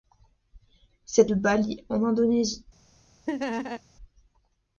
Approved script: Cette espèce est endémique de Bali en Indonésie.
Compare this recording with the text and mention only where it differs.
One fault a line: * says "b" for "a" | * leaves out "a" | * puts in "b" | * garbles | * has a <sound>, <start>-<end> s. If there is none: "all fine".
* leaves out "espèce est endémique"
* has a laugh, 3.3-3.8 s